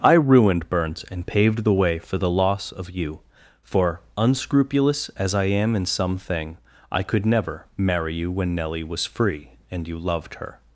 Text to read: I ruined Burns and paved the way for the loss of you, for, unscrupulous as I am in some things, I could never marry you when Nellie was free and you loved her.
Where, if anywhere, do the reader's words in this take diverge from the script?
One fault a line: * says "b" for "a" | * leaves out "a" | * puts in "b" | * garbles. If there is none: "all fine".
* says "thing" for "things"